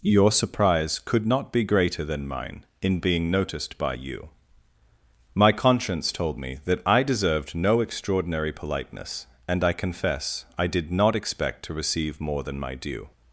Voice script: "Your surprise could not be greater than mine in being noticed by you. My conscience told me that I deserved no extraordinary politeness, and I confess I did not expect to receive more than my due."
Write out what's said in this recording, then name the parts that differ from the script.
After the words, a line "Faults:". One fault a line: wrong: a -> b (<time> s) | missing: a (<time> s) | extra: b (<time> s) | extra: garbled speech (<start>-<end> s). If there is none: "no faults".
"Your surprise could not be greater than mine in being noticed by you. My conscience told me that I deserved no extraordinary politeness, and I confess I did not expect to receive more than my due."
Faults:
no faults